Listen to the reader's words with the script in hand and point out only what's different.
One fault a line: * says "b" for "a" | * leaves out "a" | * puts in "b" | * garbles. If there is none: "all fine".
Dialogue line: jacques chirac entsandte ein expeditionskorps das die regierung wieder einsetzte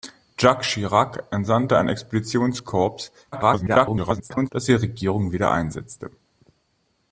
* garbles